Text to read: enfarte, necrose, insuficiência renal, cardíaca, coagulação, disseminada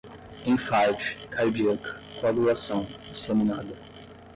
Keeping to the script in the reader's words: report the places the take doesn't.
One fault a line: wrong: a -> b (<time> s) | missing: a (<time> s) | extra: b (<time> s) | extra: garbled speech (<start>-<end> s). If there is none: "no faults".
missing: necrose insuficiência renal (1.1 s)